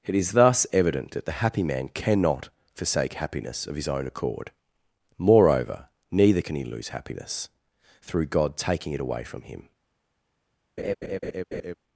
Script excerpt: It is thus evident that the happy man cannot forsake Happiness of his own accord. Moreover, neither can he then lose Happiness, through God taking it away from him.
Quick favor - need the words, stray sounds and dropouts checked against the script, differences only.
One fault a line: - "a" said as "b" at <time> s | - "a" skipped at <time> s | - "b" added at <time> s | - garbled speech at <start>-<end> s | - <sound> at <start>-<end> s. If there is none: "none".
- "then" skipped at 6.6 s
- laugh at 10.8-11.7 s